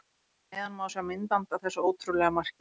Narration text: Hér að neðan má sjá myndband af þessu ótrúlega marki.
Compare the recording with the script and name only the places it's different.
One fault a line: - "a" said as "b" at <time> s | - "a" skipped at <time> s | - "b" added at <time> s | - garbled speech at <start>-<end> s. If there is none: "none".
none